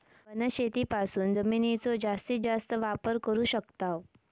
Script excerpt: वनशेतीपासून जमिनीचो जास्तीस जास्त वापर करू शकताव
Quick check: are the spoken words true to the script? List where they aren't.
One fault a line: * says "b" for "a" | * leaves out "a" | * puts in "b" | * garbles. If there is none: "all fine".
all fine